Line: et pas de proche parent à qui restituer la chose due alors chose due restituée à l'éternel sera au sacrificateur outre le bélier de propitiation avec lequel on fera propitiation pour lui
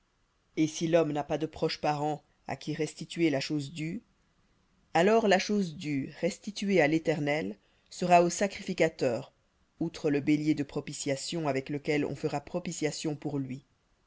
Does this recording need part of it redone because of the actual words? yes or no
yes